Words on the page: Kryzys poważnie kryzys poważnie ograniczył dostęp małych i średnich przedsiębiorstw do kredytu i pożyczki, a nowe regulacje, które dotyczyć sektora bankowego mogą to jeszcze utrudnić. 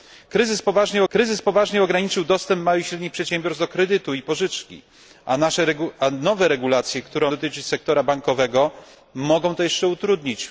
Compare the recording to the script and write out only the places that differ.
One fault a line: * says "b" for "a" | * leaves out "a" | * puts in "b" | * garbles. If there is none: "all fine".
all fine